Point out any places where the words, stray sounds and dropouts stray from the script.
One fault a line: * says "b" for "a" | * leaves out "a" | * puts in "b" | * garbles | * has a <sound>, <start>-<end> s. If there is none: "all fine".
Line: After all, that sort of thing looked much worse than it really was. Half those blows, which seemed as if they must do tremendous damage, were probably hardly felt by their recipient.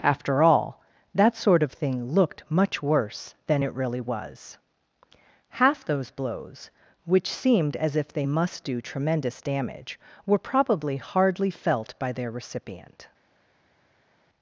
all fine